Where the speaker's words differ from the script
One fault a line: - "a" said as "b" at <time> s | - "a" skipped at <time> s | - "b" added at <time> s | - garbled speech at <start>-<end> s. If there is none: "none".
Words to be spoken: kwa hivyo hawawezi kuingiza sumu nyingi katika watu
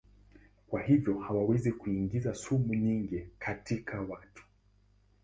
none